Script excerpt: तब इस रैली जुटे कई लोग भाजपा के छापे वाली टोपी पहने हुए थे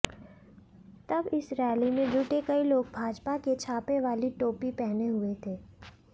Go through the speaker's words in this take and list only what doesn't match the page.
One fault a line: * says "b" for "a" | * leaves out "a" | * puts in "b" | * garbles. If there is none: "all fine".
* puts in "में"